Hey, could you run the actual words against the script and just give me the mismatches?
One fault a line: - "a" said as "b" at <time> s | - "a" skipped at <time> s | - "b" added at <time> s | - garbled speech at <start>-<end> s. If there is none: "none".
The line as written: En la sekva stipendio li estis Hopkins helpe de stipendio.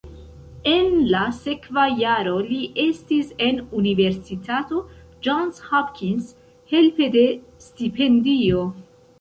- "stipendio" said as "jaro" at 2.0 s
- "en Universitato Johns" added at 3.5 s